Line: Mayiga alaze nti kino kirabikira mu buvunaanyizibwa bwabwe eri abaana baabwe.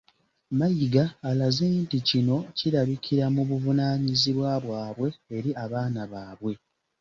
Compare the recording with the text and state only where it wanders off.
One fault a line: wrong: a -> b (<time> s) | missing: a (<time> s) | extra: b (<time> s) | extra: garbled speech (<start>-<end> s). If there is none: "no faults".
no faults